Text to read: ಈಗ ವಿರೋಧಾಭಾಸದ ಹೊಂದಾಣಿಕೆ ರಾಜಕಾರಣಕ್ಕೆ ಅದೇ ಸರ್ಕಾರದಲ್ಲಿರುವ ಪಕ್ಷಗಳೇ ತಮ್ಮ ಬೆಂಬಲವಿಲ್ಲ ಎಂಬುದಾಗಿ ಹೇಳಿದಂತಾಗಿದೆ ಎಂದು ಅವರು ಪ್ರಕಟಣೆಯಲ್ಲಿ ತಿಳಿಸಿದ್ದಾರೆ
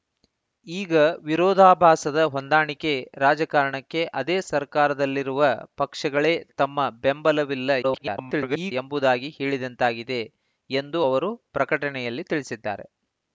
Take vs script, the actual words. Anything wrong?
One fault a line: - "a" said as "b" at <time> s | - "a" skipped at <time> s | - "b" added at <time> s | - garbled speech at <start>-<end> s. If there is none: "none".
- garbled speech at 7.8-8.7 s